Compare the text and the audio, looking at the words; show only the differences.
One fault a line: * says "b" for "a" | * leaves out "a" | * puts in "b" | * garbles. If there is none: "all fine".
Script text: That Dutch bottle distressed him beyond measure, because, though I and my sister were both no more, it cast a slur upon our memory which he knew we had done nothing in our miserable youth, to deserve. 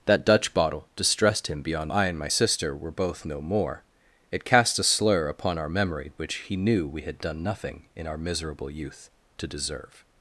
* leaves out "measure because though"